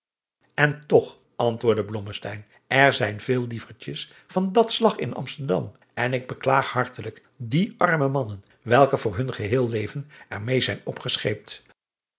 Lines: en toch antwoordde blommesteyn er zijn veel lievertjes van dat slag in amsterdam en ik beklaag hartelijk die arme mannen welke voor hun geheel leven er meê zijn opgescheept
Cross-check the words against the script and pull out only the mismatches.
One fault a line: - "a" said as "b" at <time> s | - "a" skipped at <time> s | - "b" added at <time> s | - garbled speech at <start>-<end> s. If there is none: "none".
none